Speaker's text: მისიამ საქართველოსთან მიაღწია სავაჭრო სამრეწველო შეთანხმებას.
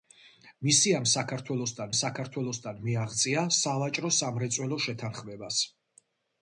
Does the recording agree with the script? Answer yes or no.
no